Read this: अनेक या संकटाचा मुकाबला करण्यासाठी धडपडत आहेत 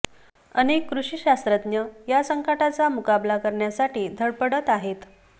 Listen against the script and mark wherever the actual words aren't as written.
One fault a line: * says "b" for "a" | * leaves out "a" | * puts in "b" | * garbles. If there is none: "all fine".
* puts in "कृषी शास्त्रज्ञ"